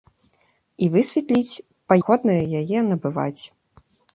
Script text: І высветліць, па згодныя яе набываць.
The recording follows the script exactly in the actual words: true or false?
true